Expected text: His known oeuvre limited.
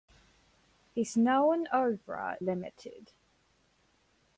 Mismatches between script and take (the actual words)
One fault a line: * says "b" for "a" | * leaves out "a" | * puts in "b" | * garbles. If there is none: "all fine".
all fine